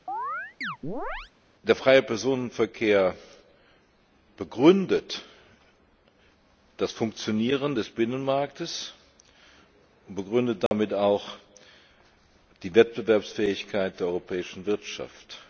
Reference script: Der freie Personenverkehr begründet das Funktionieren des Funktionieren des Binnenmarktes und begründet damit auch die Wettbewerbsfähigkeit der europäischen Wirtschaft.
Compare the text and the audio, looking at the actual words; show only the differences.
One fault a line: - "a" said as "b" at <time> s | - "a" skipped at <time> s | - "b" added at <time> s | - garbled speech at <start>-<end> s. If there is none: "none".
- "Funktionieren des" skipped at 7.9 s